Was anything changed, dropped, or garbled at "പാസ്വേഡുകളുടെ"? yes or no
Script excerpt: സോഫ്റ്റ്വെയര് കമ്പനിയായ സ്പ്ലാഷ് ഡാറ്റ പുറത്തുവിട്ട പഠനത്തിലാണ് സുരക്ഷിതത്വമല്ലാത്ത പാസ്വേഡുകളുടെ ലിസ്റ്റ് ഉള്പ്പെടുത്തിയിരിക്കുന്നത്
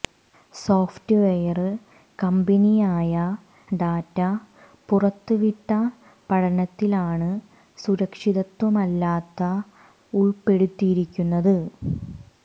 yes